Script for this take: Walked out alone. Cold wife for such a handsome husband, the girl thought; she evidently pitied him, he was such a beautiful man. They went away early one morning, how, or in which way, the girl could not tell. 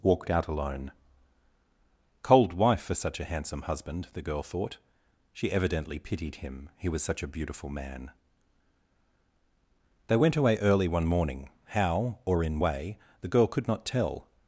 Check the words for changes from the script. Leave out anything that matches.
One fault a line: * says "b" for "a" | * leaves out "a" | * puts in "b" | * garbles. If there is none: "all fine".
* leaves out "which"